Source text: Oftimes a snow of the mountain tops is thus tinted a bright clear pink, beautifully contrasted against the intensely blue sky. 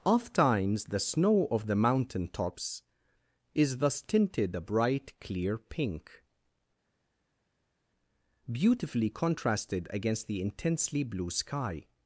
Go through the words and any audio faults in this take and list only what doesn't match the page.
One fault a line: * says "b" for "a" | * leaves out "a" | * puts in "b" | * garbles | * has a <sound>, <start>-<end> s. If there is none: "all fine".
* says "the" for "a"